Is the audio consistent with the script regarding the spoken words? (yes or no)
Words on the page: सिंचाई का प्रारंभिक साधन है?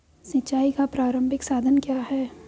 no